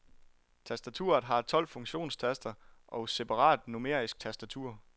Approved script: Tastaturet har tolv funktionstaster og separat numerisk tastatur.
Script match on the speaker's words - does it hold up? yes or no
yes